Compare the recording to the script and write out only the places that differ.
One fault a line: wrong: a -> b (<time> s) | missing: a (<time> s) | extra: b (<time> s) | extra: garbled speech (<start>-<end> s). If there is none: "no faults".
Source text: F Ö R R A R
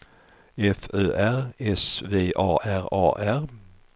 extra: S V A (1.6 s)